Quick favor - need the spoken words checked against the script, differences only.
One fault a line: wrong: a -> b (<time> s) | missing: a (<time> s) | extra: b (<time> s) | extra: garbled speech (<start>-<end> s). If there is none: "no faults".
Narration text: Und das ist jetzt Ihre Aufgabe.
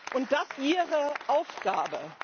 missing: ist jetzt (0.5 s)